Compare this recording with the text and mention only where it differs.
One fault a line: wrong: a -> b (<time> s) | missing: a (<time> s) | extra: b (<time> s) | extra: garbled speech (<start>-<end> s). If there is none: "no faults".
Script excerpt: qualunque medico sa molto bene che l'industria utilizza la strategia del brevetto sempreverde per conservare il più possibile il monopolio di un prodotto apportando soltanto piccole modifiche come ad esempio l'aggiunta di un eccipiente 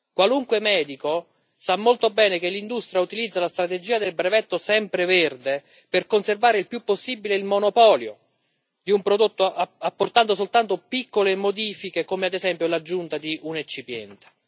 no faults